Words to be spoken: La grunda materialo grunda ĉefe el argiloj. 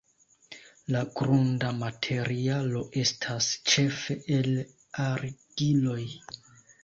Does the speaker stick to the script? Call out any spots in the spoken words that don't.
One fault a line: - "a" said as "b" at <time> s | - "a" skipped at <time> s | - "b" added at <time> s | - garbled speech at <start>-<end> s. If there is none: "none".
- "grunda" said as "estas" at 3.0 s